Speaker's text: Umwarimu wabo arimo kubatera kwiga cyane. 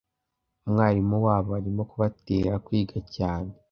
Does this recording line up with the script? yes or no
yes